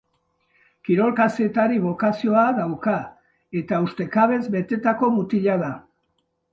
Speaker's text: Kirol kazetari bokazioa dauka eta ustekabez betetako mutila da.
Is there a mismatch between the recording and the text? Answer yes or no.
no